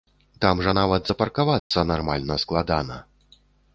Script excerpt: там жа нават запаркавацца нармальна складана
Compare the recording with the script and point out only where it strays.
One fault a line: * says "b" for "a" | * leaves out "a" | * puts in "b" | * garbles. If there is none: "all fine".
all fine